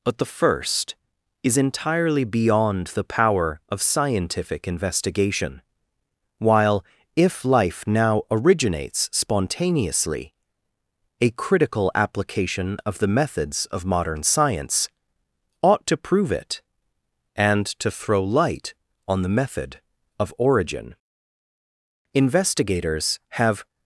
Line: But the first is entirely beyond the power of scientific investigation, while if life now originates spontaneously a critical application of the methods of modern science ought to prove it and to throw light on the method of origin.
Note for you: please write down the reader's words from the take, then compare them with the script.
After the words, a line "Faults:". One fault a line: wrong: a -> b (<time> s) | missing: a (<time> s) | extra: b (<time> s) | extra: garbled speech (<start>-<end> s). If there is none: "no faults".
But the first is entirely beyond the power of scientific investigation, while if life now originates spontaneously a critical application of the methods of modern science ought to prove it and to throw light on the method of origin. Investigators have
Faults:
extra: Investigators have (22.1 s)